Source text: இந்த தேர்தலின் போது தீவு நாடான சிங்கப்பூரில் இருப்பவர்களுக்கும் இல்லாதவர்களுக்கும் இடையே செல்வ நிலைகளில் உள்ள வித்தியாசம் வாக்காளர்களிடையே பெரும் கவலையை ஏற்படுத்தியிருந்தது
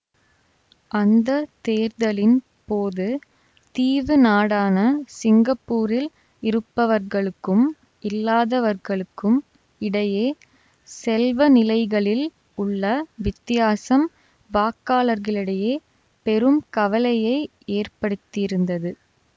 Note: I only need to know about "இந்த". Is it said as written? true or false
false